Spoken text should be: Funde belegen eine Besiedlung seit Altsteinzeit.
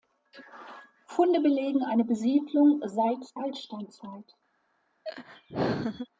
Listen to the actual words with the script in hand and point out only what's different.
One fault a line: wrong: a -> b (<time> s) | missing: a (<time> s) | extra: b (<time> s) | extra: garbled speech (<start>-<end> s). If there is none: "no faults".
no faults